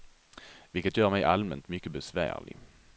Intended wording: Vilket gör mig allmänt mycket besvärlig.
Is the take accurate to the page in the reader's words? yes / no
yes